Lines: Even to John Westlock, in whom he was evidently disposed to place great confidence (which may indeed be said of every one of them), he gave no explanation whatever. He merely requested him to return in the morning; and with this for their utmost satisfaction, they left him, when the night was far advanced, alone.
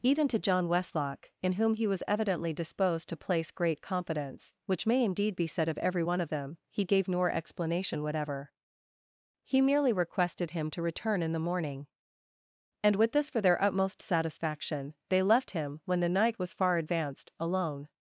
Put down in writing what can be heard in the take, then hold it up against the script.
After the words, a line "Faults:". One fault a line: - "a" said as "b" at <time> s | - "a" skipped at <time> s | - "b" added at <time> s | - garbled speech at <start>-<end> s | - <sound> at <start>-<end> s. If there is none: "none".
Even to John Westlock, in whom he was evidently disposed to place great confidence (which may indeed be said of every one of them), he gave nor explanation whatever. He merely requested him to return in the morning; and with this for their utmost satisfaction, they left him, when the night was far advanced, alone.
Faults:
- "no" said as "nor" at 7.1 s